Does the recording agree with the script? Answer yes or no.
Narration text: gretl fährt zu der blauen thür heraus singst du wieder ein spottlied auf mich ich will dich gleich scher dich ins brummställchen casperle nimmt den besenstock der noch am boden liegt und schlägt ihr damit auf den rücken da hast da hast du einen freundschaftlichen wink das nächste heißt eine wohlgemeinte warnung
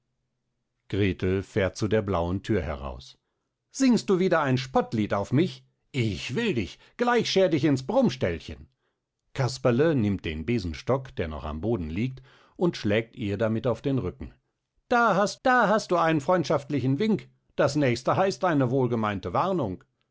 yes